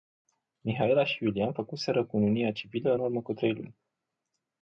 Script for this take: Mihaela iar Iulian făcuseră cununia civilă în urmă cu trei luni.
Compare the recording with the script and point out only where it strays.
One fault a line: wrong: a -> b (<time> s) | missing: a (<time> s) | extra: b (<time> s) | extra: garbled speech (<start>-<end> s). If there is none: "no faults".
wrong: iar -> și (1.0 s)